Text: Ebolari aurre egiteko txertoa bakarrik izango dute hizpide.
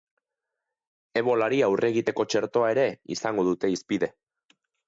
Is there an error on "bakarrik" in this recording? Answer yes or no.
yes